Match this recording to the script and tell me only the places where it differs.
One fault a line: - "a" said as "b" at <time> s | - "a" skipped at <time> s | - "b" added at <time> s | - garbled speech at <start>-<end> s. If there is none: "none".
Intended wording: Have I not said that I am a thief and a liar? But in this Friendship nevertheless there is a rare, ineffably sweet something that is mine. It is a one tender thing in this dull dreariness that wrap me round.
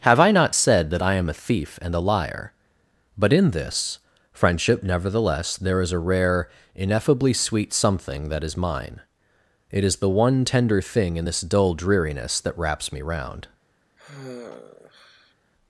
- "a" said as "the" at 10.0 s
- "wrap" said as "wraps" at 12.6 s